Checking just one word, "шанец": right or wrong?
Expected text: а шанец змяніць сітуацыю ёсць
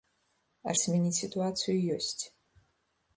wrong